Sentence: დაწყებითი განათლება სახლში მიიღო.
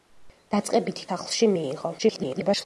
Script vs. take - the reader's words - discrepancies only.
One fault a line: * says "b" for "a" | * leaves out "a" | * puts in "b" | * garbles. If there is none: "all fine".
* leaves out "განათლება"
* garbles